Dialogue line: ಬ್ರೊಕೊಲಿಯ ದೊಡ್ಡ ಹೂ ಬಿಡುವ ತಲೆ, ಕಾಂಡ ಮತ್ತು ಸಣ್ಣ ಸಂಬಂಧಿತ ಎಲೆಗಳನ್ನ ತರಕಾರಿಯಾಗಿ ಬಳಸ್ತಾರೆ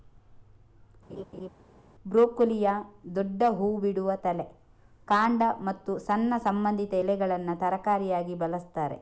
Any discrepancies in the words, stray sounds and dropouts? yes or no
yes